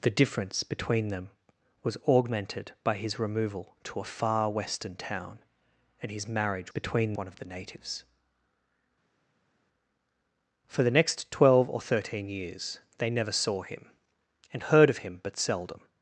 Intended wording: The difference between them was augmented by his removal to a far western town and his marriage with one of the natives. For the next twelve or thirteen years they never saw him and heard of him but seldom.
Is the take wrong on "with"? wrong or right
wrong